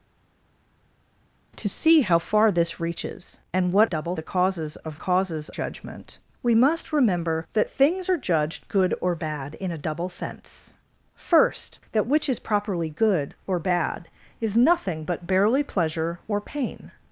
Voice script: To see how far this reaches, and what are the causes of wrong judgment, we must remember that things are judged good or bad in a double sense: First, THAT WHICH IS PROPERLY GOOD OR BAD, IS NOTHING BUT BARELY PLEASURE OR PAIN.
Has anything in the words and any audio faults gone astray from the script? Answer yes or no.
yes